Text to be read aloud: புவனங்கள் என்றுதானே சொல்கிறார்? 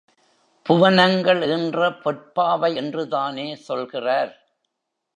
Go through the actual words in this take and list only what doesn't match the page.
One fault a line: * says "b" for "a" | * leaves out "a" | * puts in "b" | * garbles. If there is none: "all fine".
* puts in "ஈன்ற பொற்பாவை"